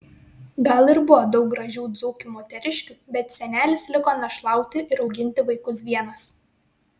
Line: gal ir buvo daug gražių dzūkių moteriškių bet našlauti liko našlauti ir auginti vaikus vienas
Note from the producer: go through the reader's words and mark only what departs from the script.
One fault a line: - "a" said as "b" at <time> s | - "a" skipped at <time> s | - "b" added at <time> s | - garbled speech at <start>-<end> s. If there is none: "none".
- "našlauti" said as "senelis" at 3.4 s